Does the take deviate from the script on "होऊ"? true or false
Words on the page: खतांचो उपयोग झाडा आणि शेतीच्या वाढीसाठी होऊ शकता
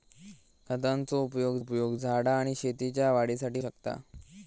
true